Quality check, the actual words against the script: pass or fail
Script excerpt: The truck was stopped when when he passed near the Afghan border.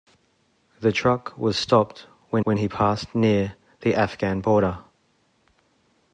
pass